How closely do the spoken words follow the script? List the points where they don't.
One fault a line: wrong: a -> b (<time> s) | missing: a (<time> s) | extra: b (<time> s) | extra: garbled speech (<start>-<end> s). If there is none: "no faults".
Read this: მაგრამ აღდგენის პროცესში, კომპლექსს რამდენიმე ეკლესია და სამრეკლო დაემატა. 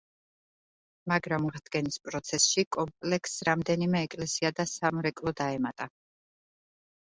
no faults